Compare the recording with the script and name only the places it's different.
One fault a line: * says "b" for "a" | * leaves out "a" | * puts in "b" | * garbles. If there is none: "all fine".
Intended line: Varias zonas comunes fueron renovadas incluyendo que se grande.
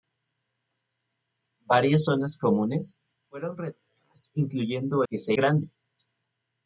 all fine